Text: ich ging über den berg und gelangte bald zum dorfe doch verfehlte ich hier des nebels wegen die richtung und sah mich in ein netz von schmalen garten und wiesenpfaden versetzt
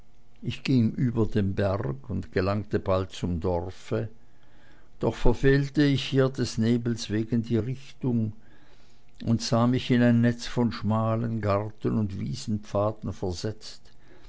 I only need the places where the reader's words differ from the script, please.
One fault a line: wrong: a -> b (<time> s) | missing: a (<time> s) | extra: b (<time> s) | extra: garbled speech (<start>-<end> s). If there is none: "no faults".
no faults